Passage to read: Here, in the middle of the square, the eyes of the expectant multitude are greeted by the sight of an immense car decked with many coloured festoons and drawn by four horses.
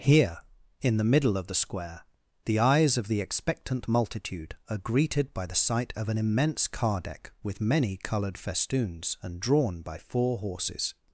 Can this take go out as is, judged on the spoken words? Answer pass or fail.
fail